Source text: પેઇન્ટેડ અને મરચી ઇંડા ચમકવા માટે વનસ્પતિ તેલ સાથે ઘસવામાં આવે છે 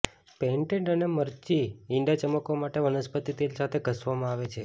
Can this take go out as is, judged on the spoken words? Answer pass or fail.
pass